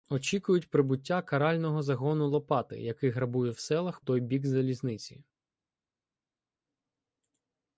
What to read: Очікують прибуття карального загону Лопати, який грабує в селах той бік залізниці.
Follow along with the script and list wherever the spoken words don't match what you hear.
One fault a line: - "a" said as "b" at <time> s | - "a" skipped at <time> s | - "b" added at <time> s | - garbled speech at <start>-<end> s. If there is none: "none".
none